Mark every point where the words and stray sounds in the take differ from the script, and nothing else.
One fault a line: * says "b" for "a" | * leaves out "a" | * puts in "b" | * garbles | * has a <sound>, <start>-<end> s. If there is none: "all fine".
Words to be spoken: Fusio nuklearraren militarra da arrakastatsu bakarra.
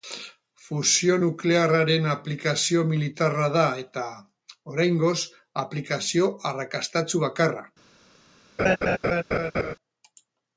* puts in "aplikazio"
* puts in "eta oraingoz aplikazio"
* has a laugh, 8.6-9.8 s